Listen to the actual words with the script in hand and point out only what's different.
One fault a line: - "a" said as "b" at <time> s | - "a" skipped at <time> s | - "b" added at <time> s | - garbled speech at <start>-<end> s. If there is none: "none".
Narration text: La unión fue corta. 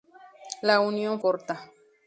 - "fue" skipped at 1.2 s